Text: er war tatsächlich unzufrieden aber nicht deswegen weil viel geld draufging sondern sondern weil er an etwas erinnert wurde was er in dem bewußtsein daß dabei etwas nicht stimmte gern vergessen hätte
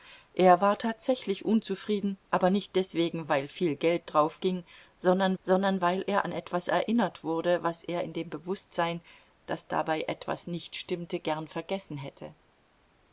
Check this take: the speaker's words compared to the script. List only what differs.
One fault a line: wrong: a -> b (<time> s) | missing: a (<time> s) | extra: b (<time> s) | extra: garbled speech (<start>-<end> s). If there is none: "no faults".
no faults